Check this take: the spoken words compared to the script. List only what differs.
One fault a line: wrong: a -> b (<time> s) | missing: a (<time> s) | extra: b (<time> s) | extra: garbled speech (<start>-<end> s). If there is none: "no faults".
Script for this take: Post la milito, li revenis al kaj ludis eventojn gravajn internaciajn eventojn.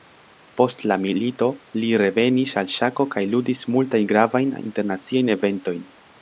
extra: ŝako (2.8 s)
wrong: eventojn -> multajn (3.8 s)